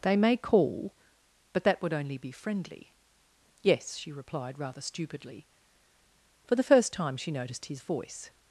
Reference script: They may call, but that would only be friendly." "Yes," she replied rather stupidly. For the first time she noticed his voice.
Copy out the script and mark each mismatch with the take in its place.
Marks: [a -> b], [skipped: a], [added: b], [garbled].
They may call, but that would only be friendly." "Yes," she replied rather stupidly. For the first time she noticed his voice.